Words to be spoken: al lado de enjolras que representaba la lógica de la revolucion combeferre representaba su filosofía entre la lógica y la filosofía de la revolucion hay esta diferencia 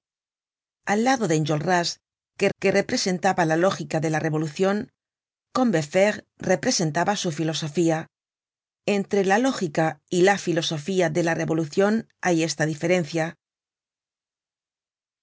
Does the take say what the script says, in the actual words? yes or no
no